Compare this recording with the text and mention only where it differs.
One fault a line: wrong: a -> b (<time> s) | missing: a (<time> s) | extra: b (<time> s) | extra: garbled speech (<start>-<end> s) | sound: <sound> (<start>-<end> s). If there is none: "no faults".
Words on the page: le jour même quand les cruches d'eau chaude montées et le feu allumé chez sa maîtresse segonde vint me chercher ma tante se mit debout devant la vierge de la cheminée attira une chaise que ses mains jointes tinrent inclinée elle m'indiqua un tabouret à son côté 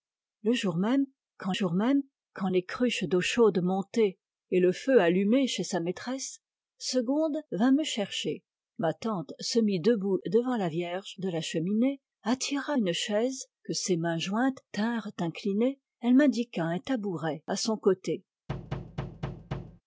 extra: jour même quand (1.5 s)
sound: thud (18.5-19.8 s)